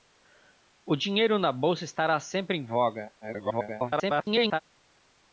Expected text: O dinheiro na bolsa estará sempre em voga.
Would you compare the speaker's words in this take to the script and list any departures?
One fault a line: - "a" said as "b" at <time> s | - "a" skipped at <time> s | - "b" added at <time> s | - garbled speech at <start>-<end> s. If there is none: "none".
- garbled speech at 3.2-4.6 s